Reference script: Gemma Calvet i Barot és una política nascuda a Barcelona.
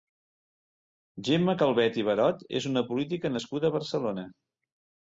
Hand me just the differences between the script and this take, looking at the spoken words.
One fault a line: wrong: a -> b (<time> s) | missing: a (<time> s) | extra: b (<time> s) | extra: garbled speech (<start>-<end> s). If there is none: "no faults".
no faults